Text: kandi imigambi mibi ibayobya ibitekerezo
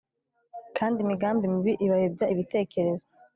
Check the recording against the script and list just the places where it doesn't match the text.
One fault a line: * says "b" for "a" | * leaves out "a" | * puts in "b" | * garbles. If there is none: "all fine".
all fine